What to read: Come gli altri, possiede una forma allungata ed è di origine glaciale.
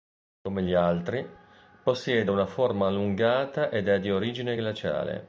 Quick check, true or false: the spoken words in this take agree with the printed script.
true